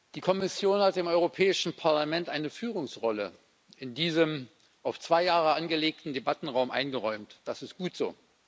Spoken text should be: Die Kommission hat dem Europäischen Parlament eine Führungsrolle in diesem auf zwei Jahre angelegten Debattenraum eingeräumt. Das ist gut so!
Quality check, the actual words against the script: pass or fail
pass